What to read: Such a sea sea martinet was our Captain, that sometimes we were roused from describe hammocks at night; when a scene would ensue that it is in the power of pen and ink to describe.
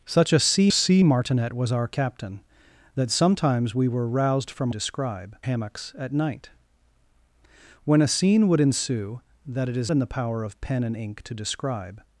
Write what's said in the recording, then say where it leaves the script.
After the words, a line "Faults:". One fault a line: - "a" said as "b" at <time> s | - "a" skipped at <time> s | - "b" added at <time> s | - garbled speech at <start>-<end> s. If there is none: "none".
Such a sea sea martinet was our Captain, that sometimes we were roused from describe hammocks at night; when a scene would ensue that it is in the power of pen and ink to describe.
Faults:
none